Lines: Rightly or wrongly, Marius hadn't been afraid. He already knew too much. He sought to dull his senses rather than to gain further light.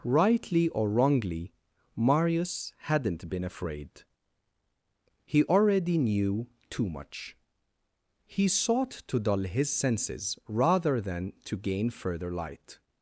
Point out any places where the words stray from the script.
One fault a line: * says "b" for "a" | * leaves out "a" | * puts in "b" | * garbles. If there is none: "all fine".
all fine